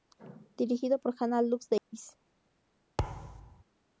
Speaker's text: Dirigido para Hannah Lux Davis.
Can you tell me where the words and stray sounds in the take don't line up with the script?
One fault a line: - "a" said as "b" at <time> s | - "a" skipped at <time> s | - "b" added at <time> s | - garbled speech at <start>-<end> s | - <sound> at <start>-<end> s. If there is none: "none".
- "para" said as "por" at 0.9 s
- dropout at 1.8-1.9 s
- thud at 3.0-3.6 s